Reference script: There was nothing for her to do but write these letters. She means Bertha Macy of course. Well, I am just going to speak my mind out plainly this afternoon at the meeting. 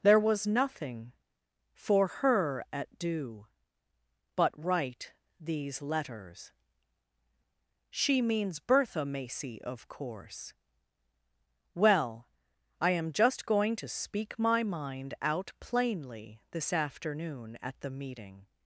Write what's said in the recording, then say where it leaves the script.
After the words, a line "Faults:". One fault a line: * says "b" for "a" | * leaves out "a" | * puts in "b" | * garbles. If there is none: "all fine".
There was nothing for her at do but write these letters. She means Bertha Macy of course. Well, I am just going to speak my mind out plainly this afternoon at the meeting.
Faults:
* says "at" for "to"